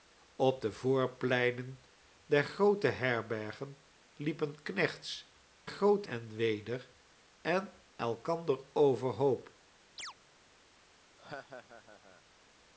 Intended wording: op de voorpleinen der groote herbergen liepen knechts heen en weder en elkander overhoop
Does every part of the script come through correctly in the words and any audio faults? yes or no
no